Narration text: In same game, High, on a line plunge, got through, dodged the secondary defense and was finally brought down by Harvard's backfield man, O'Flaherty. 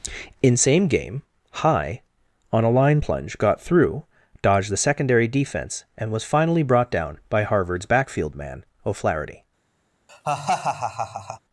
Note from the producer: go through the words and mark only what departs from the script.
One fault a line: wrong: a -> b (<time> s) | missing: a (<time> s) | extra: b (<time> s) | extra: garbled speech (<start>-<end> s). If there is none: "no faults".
no faults